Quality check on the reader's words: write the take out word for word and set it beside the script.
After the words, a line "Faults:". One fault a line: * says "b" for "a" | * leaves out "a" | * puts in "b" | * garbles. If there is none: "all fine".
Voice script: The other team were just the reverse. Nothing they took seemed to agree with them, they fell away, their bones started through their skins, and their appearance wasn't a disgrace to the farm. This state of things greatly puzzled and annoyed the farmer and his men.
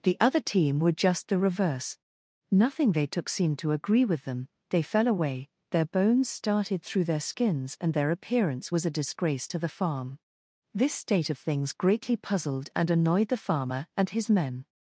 The other team were just the reverse. Nothing they took seemed to agree with them, they fell away, their bones started through their skins, and their appearance was a disgrace to the farm. This state of things greatly puzzled and annoyed the farmer and his men.
Faults:
* says "was" for "wasn't"